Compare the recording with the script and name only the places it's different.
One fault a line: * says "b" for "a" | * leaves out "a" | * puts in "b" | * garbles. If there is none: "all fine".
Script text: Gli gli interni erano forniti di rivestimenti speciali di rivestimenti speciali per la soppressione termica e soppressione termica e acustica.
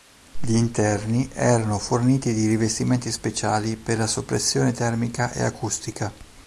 * leaves out "gli"
* leaves out "di rivestimenti speciali"
* leaves out "soppressione termica e"